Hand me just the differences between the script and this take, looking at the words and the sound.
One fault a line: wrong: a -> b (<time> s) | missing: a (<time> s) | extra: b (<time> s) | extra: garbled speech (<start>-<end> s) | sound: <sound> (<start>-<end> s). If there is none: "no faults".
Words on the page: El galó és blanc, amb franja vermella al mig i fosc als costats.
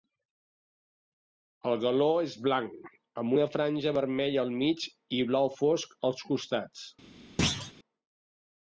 extra: una (3.4 s)
extra: blau (5.4 s)
sound: thud (7.4-7.7 s)